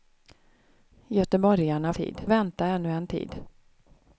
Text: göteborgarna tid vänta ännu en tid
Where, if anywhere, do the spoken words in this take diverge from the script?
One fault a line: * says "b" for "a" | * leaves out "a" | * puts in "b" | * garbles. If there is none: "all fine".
all fine